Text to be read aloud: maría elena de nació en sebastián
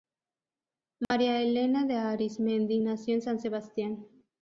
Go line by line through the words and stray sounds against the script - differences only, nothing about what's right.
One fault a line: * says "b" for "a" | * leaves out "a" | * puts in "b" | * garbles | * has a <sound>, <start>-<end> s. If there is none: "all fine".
* has a dropout, 1.0-1.1 s
* puts in "arizmendi"
* puts in "san"